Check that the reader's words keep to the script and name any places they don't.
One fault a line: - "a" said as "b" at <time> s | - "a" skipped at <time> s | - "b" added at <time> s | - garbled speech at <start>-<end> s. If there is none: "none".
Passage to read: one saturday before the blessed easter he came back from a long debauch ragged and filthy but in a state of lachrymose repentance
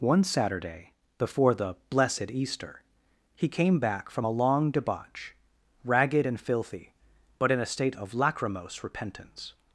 none